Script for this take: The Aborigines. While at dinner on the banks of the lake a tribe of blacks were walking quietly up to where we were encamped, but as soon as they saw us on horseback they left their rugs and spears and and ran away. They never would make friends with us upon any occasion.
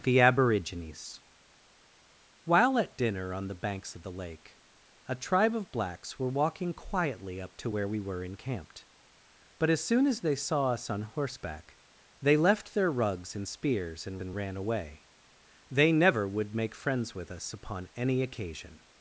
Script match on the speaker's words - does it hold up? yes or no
yes